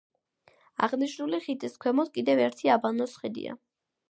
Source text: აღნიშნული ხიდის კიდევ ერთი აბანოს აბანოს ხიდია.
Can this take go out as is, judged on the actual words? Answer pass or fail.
fail